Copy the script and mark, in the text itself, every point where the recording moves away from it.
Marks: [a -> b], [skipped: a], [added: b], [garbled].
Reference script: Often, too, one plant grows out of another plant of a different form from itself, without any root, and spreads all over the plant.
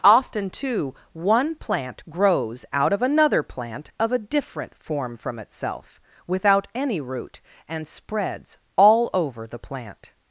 Often, too, one plant grows out of another plant of a different form from itself, without any root, and spreads all over the plant.